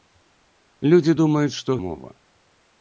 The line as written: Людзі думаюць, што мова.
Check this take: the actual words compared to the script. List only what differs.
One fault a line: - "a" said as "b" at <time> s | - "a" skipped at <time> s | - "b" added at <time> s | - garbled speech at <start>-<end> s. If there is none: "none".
none